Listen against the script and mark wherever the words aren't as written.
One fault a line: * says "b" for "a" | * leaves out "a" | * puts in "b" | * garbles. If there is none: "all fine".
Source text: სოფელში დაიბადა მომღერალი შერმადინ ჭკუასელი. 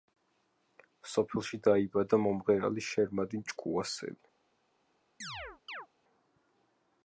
all fine